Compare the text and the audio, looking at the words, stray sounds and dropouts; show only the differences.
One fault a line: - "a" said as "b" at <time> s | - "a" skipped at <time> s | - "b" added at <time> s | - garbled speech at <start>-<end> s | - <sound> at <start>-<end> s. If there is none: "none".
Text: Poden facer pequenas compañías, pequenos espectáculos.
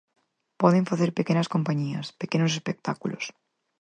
none